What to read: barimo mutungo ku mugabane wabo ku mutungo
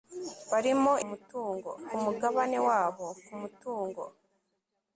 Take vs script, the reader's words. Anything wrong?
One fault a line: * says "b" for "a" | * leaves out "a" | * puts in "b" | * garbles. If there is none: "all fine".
all fine